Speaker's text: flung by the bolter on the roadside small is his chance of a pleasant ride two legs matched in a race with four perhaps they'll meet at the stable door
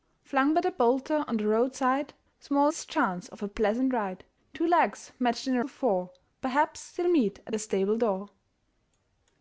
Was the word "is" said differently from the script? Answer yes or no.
yes